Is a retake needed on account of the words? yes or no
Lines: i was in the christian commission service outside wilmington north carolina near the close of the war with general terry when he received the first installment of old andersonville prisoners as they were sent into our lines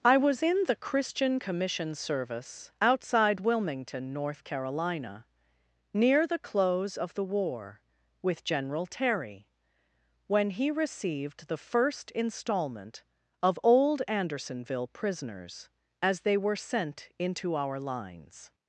no